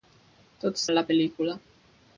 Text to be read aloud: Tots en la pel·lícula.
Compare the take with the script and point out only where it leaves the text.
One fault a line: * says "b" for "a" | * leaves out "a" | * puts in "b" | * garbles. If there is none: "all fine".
all fine